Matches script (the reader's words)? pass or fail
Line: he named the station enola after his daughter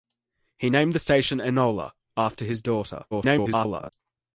fail